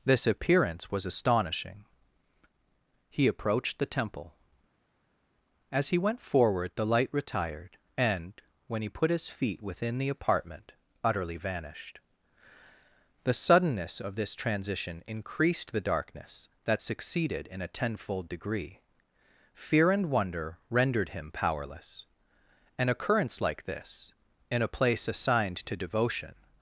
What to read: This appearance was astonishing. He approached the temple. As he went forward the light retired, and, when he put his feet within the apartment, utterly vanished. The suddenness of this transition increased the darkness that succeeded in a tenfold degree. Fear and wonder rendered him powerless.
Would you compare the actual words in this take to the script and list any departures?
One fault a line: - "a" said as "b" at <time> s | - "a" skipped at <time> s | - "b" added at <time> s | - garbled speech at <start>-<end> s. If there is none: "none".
- "An occurrence like this in a place assigned to devotion" added at 22.8 s